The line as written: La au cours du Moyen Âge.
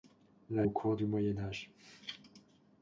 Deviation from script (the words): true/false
false